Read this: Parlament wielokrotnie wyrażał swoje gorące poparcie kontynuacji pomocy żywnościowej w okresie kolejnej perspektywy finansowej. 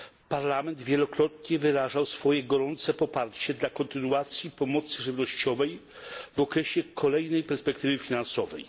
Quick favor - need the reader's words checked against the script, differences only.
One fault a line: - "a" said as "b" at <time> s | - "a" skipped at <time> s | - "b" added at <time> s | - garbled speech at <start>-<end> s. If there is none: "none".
- "dla" added at 3.5 s